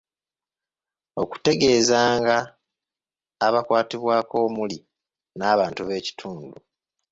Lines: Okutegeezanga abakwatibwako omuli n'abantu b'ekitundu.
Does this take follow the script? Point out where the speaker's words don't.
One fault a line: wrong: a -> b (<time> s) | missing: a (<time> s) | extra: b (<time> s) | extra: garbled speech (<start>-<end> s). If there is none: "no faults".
no faults